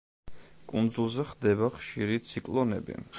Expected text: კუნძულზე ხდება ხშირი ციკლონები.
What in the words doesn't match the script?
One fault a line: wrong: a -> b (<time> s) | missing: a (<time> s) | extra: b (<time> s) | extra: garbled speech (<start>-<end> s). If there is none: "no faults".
no faults